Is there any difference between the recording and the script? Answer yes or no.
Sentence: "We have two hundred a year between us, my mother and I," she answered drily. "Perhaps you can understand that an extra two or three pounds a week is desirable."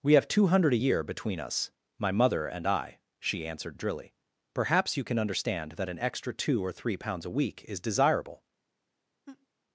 no